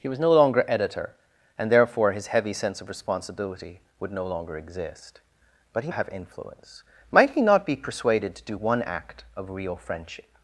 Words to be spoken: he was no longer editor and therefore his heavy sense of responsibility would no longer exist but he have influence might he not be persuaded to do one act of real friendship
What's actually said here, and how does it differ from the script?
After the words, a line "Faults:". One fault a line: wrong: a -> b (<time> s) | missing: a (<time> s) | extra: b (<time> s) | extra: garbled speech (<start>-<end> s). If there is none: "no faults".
he was no longer editor and therefore his heavy sense of responsibility would no longer exist but he have influence might he not be persuaded to do one act of real friendship
Faults:
no faults